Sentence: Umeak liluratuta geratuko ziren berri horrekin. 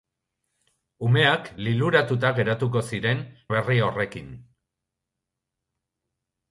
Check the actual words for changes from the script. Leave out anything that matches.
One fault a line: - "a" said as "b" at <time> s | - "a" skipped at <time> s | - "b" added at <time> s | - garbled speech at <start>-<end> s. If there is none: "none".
none